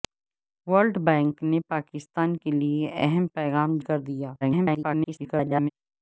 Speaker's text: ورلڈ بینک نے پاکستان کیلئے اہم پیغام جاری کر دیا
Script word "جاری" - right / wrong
wrong